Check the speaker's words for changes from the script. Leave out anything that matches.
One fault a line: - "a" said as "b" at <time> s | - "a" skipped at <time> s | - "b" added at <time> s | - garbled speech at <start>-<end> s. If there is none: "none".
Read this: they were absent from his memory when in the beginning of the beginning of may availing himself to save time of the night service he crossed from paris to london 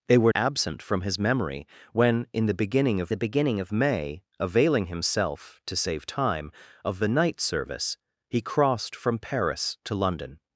none